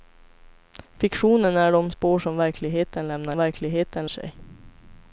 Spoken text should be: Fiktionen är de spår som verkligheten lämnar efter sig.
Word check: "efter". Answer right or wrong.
wrong